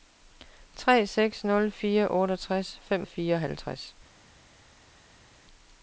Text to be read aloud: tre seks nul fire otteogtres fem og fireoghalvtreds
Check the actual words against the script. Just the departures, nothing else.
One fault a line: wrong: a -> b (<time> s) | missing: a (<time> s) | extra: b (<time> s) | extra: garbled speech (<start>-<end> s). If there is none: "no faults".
no faults